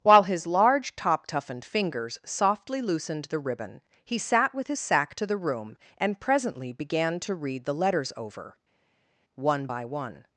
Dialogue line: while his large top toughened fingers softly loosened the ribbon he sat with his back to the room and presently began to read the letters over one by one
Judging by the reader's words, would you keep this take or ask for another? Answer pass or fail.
fail